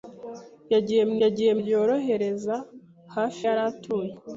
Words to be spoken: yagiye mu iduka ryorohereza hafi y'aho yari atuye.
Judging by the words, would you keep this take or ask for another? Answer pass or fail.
fail